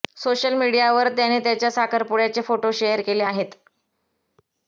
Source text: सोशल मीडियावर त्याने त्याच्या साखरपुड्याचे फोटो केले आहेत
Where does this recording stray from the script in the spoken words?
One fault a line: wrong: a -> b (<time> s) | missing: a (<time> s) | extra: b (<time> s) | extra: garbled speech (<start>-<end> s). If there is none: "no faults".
extra: शेअर (2.7 s)